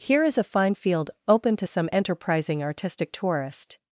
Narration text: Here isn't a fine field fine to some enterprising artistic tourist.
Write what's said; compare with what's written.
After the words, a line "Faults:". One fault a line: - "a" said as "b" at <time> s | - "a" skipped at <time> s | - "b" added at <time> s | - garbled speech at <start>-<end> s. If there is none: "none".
Here is a fine field open to some enterprising artistic tourist.
Faults:
- "isn't" said as "is" at 0.2 s
- "fine" said as "open" at 1.3 s